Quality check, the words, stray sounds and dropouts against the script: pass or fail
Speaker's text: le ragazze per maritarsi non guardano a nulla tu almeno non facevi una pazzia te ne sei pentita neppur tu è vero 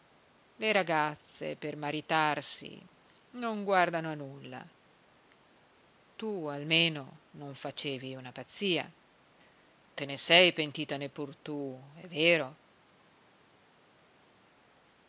pass